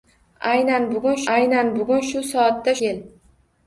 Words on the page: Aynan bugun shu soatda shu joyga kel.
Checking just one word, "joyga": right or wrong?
wrong